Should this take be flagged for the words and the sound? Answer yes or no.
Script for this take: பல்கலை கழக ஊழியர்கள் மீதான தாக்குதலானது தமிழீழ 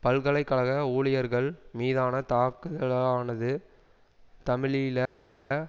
no